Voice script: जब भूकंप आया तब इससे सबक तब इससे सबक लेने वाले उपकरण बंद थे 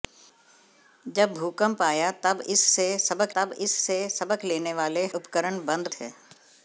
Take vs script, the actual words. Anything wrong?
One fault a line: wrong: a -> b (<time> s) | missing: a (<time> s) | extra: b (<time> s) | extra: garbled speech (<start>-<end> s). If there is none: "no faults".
no faults